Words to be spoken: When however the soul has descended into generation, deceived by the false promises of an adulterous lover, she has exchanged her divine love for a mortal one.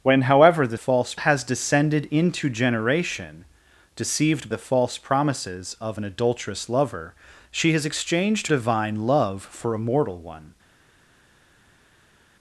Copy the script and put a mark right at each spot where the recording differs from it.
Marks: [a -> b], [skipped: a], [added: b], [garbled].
When however the [soul -> false] has descended into generation, deceived [skipped: by] the false promises of an adulterous lover, she has exchanged [skipped: her] divine love for a mortal one.